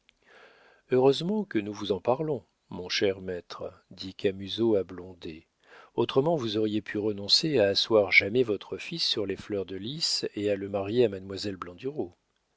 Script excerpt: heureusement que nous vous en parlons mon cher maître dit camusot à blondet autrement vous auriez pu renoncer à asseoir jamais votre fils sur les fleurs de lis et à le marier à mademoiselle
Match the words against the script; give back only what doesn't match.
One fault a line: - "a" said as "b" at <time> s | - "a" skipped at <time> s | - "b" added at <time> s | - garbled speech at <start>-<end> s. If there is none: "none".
none